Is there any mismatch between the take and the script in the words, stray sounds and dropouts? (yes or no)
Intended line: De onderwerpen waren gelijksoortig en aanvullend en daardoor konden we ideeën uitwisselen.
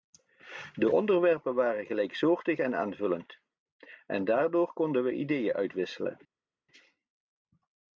no